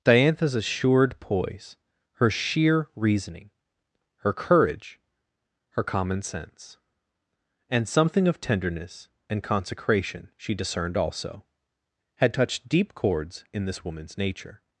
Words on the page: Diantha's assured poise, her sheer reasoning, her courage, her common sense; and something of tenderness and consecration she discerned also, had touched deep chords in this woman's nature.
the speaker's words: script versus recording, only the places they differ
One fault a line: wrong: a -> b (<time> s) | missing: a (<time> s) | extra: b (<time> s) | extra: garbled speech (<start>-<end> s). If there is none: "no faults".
no faults